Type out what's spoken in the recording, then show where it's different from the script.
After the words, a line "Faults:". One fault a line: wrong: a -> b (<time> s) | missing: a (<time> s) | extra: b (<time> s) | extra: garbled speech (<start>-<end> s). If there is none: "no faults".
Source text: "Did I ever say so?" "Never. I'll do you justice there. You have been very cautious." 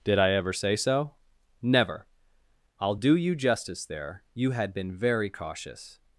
"Did I ever say so?" "Never. I'll do you justice there. You had been very cautious."
Faults:
wrong: have -> had (4.5 s)